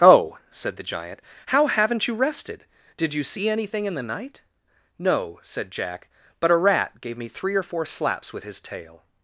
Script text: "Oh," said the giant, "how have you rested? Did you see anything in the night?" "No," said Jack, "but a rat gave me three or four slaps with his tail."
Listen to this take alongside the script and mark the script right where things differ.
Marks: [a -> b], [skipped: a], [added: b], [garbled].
"Oh," said the giant, "how [have -> haven't] you rested? Did you see anything in the night?" "No," said Jack, "but a rat gave me three or four slaps with his tail."